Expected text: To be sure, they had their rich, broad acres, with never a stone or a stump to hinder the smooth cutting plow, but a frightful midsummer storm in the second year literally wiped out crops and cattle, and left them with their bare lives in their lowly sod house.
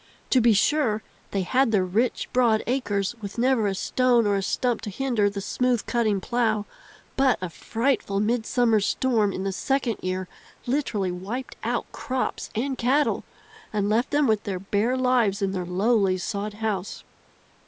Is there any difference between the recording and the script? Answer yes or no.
no